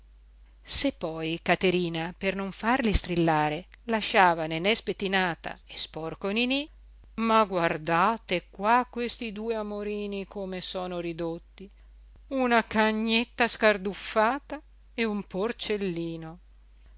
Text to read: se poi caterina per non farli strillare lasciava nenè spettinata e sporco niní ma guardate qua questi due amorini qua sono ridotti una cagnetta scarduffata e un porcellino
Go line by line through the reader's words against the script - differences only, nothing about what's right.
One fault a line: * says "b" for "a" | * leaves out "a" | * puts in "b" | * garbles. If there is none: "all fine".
* says "come" for "qua"